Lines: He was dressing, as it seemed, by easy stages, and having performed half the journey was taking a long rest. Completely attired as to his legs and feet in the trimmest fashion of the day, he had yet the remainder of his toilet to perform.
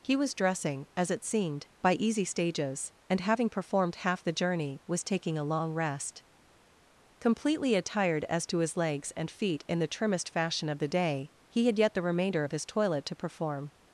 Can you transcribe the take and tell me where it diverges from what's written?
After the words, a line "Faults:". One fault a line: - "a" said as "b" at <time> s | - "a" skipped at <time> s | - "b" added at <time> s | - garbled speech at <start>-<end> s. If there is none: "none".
He was dressing, as it seemed, by easy stages, and having performed half the journey was taking a long rest. Completely attired as to his legs and feet in the trimmest fashion of the day, he had yet the remainder of his toilet to perform.
Faults:
none